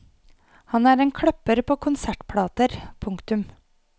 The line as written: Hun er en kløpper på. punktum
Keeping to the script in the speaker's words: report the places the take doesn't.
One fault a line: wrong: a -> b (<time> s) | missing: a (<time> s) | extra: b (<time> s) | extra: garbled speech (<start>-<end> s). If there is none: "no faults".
wrong: Hun -> Han (0.7 s)
extra: konsertplater (1.9 s)